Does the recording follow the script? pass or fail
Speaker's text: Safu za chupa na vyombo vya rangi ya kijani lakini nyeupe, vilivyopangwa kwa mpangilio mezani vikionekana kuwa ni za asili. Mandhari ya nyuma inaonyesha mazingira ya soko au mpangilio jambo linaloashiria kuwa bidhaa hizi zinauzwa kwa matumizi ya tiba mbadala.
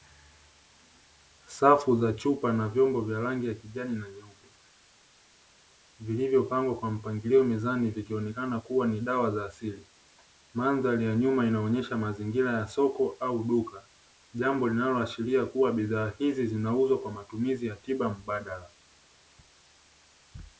fail